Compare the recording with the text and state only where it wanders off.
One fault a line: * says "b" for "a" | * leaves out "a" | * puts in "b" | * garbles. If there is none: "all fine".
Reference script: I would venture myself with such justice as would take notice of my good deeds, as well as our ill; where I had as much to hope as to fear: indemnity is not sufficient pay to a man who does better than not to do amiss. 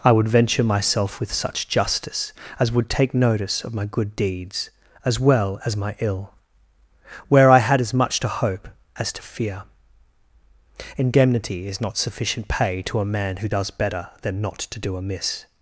* says "my" for "our"